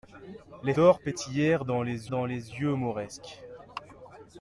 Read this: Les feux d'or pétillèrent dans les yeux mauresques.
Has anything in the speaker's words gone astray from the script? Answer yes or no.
yes